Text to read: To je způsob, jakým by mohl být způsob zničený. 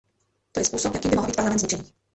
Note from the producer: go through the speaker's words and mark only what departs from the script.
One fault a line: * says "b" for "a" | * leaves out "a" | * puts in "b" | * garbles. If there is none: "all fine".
* says "parlament" for "způsob"